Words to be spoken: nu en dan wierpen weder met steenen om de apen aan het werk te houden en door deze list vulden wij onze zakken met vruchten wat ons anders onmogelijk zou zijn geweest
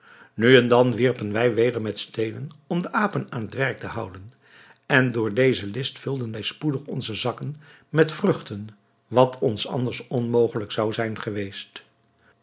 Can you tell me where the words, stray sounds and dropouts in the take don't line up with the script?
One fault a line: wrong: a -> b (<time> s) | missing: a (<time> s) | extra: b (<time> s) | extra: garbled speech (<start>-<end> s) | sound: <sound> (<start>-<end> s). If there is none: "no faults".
extra: wij (1.3 s)
extra: spoedig (6.4 s)